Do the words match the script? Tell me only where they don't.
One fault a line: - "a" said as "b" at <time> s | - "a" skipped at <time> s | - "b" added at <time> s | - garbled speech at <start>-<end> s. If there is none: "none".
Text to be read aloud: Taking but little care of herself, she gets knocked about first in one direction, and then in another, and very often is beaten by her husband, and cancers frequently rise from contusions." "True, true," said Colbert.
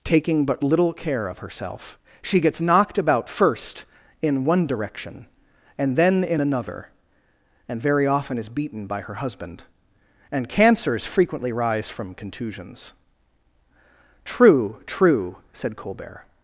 none